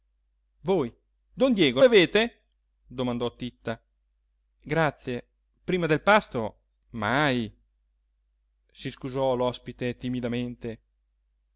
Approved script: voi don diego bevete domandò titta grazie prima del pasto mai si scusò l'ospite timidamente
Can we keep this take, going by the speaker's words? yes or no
yes